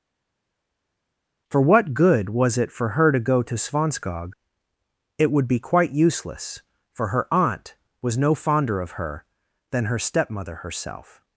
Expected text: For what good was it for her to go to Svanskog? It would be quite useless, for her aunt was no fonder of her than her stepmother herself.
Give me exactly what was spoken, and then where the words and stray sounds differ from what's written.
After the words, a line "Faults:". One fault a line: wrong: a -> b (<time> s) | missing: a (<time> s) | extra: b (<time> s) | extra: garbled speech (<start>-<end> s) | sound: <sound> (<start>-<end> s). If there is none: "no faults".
For what good was it for her to go to Svanskog? It would be quite useless, for her aunt was no fonder of her than her stepmother herself.
Faults:
no faults